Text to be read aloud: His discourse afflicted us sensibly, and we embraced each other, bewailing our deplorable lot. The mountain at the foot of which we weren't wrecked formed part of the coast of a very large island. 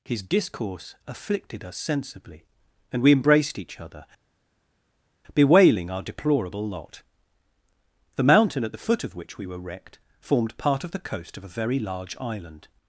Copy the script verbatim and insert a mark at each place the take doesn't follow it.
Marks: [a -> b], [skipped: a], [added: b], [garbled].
His discourse afflicted us sensibly, and we embraced each other, bewailing our deplorable lot. The mountain at the foot of which we [weren't -> were] wrecked formed part of the coast of a very large island.